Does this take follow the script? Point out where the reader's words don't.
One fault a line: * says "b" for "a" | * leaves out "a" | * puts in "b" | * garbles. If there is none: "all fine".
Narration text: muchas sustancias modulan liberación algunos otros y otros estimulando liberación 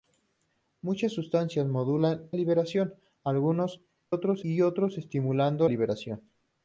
all fine